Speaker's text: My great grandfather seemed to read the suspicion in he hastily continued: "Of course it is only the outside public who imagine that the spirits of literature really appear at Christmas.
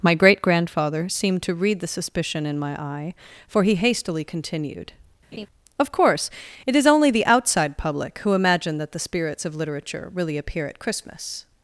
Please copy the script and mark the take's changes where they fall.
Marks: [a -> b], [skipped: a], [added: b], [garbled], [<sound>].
My great grandfather seemed to read the suspicion in [added: my eye for] he hastily continued: [laugh] "Of course it is only the outside public who imagine that the spirits of literature really appear at Christmas.